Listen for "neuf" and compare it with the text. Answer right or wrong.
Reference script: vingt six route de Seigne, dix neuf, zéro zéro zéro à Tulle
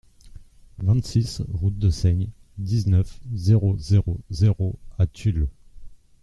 right